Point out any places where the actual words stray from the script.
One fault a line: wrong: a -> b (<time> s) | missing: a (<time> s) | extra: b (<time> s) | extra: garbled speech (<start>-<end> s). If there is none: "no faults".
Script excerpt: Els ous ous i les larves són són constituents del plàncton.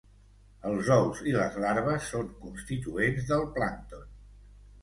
missing: ous (1.2 s)
missing: són (2.3 s)